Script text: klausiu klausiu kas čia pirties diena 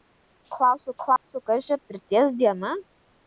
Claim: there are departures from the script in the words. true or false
false